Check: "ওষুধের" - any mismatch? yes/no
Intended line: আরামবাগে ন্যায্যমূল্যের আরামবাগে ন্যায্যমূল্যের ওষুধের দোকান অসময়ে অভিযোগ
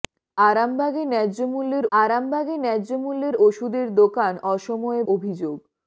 no